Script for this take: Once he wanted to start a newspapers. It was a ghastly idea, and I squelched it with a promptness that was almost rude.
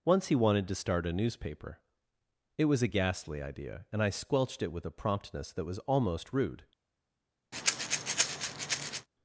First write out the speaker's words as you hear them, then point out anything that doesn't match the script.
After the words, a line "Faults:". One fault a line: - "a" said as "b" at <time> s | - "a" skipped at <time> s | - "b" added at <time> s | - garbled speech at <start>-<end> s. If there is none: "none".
Once he wanted to start a newspaper. It was a ghastly idea, and I squelched it with a promptness that was almost rude.
Faults:
- "newspapers" said as "newspaper" at 1.1 s